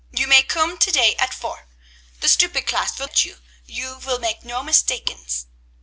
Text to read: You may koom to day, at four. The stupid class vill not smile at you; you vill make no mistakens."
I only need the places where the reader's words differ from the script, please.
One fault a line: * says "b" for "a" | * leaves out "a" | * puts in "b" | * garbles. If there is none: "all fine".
* leaves out "not smile"